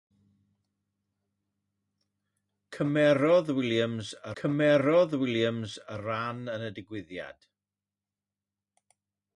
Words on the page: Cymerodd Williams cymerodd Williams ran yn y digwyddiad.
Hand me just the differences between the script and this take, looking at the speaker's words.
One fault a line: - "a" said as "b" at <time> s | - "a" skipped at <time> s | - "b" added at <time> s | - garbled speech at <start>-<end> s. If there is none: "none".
none